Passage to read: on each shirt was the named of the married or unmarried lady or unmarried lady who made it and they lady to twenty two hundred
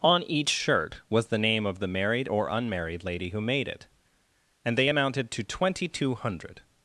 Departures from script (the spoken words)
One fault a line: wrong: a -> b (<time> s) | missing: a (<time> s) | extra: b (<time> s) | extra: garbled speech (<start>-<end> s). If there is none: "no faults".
wrong: named -> name (1.4 s)
missing: or unmarried lady (3.3 s)
wrong: lady -> amounted (4.9 s)